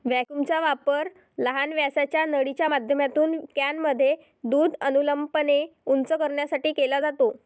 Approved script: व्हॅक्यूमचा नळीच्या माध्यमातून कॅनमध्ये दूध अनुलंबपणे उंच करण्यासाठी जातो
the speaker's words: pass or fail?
fail